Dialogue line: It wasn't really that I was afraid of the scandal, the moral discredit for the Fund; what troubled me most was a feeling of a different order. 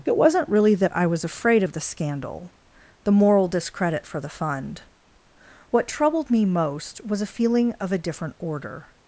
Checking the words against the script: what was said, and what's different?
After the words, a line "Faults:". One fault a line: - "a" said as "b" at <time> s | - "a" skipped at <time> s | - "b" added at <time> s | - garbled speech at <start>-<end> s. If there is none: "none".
It wasn't really that I was afraid of the scandal, the moral discredit for the Fund; what troubled me most was a feeling of a different order.
Faults:
none